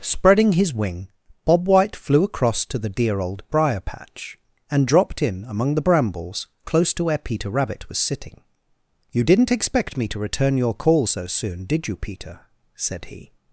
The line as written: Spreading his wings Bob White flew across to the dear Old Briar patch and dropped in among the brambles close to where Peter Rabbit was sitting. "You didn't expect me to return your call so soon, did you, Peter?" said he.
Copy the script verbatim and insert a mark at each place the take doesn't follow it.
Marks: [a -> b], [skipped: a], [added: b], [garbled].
Spreading his [wings -> wing] Bob White flew across to the dear Old Briar patch and dropped in among the brambles close to where Peter Rabbit was sitting. "You didn't expect me to return your call so soon, did you, Peter?" said he.